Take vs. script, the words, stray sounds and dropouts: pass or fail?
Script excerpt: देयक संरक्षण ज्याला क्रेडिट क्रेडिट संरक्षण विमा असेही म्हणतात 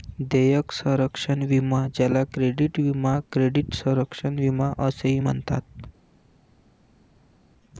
fail